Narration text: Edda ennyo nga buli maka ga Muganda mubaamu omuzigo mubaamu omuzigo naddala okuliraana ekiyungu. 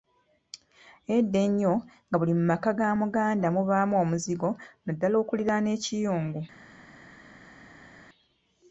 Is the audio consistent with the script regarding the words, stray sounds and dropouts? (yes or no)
no